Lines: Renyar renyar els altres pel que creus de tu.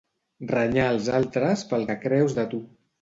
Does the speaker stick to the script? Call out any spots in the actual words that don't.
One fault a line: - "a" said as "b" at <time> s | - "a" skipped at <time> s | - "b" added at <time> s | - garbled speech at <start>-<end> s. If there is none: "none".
- "renyar" skipped at 0.9 s